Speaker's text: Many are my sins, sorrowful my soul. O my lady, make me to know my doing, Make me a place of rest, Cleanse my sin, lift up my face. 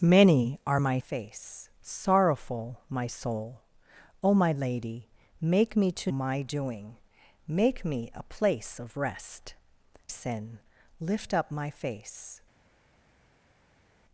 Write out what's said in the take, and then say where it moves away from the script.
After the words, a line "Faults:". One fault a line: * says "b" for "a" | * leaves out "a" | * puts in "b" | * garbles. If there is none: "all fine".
Many are my face, sorrowful my soul. O my lady, make me to my doing, Make me a place of rest, Sin, lift up my face.
Faults:
* says "face" for "sins"
* leaves out "know"
* leaves out "Cleanse my"